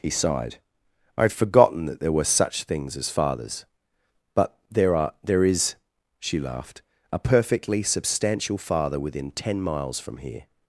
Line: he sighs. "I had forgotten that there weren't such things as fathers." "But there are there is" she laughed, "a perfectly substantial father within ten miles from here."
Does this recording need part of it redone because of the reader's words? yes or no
yes